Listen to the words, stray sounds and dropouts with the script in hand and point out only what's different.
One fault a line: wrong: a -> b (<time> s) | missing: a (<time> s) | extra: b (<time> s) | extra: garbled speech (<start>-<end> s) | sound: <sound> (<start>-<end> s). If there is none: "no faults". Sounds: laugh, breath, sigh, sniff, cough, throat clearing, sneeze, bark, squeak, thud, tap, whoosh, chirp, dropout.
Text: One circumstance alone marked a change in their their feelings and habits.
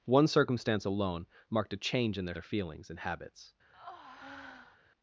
sound: breath (3.7-4.8 s)